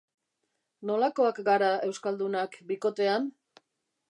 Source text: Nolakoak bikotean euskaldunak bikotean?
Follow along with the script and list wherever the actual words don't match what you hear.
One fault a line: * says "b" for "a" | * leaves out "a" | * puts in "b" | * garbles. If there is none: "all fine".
* says "gara" for "bikotean"